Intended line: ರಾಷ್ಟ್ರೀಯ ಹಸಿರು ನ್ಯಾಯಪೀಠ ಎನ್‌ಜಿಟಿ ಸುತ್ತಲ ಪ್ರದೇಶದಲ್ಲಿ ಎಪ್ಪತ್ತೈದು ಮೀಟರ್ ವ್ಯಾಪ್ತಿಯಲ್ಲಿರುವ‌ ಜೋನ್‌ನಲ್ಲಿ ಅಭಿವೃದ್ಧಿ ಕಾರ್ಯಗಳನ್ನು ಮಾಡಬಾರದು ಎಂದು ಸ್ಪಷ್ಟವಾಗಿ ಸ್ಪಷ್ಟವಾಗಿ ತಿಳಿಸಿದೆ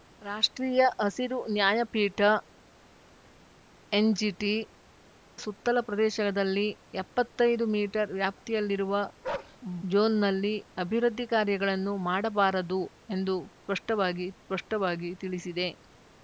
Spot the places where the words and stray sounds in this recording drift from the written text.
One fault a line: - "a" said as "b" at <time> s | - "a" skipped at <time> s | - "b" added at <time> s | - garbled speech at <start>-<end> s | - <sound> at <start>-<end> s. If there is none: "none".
- bark at 9.2-9.6 s